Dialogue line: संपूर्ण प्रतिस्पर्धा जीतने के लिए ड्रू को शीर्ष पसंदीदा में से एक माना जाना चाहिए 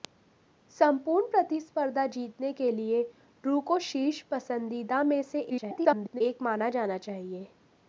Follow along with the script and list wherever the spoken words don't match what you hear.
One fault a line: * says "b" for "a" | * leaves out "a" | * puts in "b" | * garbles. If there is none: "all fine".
* garbles